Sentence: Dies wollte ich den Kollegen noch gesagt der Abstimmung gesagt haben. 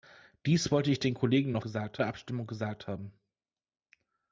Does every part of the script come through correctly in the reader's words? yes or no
yes